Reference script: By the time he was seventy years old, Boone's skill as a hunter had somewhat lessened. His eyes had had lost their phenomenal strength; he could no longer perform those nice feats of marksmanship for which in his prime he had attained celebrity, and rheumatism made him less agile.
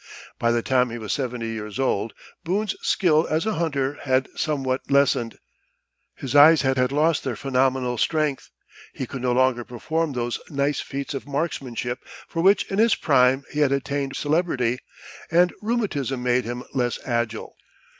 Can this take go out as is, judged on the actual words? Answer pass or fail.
pass